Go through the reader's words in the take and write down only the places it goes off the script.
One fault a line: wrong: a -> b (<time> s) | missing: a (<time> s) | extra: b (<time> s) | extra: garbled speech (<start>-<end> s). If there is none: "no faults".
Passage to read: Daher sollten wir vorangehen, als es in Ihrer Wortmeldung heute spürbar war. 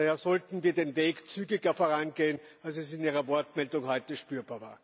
extra: den Weg zügiger (0.7 s)